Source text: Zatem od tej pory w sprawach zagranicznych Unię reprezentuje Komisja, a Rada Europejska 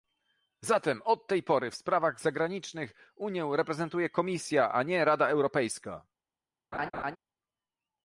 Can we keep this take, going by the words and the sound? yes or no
no